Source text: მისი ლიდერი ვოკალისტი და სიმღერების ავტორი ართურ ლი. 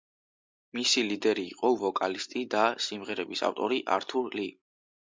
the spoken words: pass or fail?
fail